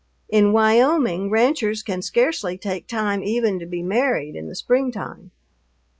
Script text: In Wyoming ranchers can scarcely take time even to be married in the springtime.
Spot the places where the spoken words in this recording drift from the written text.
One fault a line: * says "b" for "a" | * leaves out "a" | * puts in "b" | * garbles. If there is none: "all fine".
all fine